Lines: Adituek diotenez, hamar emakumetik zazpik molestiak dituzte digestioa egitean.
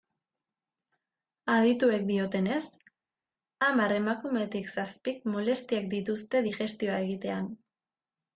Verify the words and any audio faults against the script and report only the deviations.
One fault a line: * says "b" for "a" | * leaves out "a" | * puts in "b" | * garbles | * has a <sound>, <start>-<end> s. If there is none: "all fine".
all fine